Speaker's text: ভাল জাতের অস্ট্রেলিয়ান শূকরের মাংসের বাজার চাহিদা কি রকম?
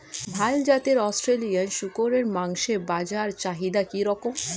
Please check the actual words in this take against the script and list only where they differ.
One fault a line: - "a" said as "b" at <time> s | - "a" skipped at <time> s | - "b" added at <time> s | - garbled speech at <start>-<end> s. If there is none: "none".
none